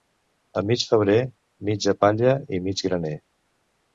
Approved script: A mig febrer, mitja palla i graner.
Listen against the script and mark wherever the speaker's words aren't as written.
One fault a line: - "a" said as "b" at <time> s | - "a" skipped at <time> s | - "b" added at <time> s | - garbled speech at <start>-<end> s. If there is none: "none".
- "mig" added at 2.7 s